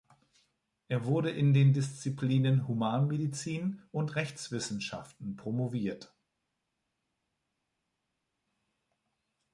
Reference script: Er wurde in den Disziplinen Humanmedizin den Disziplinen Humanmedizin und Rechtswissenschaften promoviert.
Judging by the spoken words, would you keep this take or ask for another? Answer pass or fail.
fail